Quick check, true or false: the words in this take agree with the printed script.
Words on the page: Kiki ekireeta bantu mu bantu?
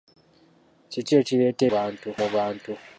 true